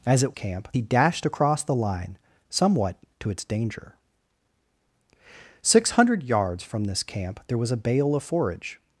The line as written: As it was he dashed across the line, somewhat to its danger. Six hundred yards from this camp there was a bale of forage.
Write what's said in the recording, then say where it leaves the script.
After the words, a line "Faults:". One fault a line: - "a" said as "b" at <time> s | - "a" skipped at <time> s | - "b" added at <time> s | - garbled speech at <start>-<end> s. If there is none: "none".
As it camp he dashed across the line, somewhat to its danger. Six hundred yards from this camp there was a bale of forage.
Faults:
- "was" said as "camp" at 0.3 s